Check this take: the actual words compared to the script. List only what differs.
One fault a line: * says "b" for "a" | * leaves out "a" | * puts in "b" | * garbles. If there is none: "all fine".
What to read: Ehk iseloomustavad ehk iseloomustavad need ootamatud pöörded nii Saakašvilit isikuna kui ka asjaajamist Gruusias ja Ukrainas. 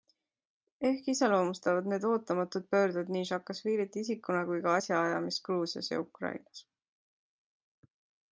* leaves out "ehk iseloomustavad"